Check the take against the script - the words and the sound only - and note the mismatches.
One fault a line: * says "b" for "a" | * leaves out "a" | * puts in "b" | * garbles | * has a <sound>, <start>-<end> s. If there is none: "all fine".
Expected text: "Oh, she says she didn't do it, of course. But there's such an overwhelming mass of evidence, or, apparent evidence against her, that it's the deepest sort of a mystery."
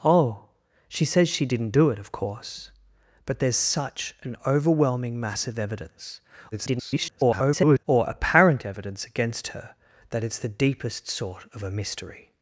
* garbles